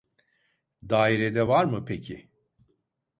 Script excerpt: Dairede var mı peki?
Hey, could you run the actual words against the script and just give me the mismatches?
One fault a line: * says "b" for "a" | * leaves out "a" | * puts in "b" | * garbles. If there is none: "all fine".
all fine